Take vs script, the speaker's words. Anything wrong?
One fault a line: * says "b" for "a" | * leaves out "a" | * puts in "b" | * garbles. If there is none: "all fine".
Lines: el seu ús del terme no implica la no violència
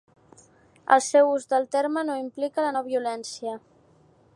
all fine